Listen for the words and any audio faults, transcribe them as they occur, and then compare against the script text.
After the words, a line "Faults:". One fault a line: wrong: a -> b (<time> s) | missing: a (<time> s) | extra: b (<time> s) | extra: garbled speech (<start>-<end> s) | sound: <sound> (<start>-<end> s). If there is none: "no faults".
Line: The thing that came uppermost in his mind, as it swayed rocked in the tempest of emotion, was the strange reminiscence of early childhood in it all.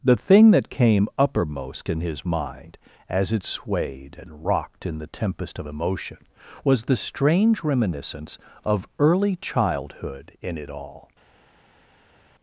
The thing that came uppermost in his mind, as it swayed and rocked in the tempest of emotion, was the strange reminiscence of early childhood in it all.
Faults:
extra: and (4.2 s)